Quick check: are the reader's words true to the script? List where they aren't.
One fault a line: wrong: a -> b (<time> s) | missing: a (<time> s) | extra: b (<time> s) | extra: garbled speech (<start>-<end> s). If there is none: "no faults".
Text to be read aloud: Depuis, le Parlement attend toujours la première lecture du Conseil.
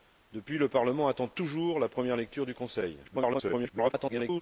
extra: garbled speech (3.0-4.4 s)